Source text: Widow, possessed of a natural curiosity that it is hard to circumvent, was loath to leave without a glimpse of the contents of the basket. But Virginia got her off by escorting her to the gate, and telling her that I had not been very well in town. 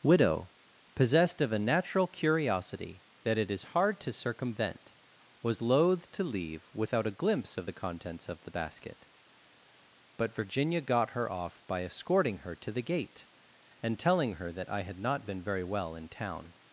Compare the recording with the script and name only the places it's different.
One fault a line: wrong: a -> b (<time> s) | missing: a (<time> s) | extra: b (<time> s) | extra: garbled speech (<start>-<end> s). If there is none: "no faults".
no faults